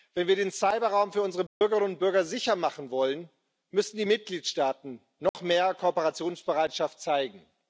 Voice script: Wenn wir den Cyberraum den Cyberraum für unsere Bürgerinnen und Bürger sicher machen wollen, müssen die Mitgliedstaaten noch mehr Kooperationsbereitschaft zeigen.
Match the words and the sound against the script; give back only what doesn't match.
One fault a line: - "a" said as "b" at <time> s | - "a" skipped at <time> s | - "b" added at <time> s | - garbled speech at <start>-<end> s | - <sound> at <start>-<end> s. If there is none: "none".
- "den Cyberraum" skipped at 1.1 s
- dropout at 1.5-1.6 s
- dropout at 5.3-5.3 s